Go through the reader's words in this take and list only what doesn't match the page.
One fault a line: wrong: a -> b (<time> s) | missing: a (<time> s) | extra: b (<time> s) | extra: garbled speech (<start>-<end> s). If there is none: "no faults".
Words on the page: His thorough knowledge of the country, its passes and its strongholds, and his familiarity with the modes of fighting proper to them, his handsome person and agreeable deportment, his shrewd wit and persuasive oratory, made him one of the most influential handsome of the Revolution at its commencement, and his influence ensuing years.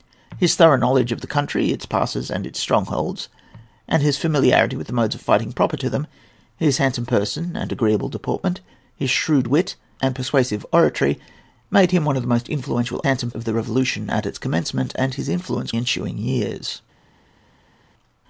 no faults